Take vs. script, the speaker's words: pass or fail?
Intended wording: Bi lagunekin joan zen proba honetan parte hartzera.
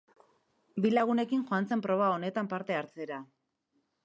pass